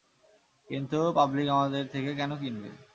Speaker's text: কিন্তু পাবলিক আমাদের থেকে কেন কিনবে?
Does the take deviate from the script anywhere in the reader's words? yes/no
no